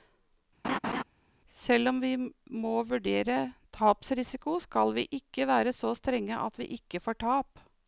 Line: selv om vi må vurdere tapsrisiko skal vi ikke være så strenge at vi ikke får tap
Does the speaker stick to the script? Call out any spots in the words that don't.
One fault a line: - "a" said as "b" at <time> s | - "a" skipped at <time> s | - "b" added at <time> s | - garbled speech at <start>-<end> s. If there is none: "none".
none